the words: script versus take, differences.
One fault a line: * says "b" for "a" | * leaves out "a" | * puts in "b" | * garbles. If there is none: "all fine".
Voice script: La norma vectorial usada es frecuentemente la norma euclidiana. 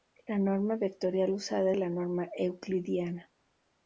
* leaves out "es frecuentemente"